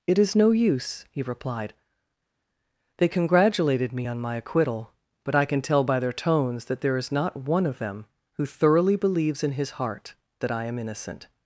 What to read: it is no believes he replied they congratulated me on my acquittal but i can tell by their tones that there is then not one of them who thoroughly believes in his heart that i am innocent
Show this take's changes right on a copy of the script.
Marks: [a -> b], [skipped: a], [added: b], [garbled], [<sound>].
it is no [believes -> use] he replied they congratulated me on my acquittal but i can tell by their tones that there is [skipped: then] not one of them who thoroughly believes in his heart that i am innocent